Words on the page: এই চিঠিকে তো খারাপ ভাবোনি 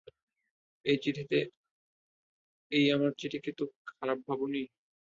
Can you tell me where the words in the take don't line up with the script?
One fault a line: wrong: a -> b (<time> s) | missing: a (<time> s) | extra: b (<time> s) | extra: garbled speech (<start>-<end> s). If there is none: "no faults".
extra: আমার (2.9 s)